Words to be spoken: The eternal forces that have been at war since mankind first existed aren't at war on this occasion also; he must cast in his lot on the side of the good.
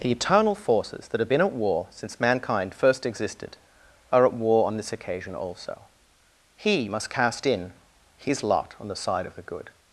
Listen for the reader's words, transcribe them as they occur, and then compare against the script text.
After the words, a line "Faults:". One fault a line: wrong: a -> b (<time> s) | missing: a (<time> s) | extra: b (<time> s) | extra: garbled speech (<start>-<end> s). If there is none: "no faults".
The eternal forces that have been at war since mankind first existed are at war on this occasion also; he must cast in his lot on the side of the good.
Faults:
wrong: aren't -> are (4.1 s)